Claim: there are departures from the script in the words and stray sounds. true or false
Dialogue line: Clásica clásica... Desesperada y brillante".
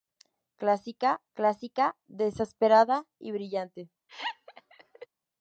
true